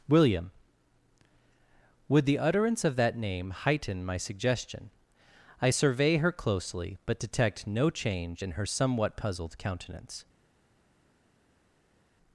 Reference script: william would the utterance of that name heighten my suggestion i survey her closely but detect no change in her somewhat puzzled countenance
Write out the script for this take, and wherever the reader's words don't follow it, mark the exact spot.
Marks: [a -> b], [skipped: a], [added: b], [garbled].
william would the utterance of that name heighten my suggestion i survey her closely but detect no change in her somewhat puzzled countenance